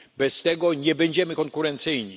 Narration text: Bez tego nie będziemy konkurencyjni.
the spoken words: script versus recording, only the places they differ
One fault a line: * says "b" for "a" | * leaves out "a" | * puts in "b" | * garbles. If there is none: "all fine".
all fine